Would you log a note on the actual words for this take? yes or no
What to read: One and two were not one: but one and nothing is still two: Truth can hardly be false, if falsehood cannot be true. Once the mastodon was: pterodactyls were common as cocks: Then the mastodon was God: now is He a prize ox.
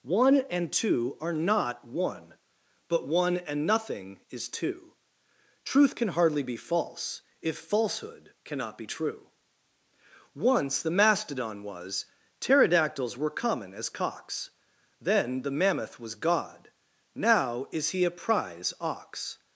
yes